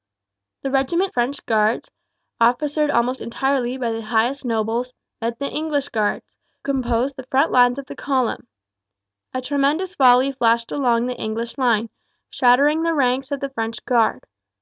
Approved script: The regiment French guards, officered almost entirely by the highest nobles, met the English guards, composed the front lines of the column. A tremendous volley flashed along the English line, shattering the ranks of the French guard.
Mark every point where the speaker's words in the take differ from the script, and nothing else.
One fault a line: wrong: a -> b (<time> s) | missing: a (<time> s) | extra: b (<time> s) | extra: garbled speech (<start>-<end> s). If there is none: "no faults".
no faults